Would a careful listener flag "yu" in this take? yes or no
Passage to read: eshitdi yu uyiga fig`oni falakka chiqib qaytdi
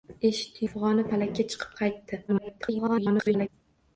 yes